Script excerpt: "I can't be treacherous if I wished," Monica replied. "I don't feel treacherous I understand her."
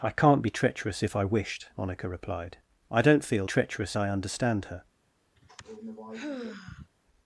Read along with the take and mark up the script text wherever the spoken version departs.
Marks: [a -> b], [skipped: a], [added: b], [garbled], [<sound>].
"I can't be treacherous if I wished," Monica replied. "I don't feel treacherous I understand her." [sigh]